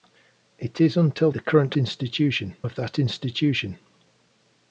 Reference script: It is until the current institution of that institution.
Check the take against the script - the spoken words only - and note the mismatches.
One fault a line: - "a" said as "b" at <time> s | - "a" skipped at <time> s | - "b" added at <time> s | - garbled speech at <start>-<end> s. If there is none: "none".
none